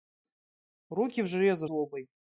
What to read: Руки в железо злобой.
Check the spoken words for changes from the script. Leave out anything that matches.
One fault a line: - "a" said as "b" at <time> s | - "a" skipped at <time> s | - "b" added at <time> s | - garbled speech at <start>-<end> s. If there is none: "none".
none